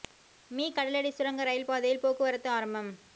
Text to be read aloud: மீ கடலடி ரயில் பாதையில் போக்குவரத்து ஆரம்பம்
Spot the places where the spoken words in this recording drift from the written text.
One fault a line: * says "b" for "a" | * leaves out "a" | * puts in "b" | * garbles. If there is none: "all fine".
* puts in "சுரங்க"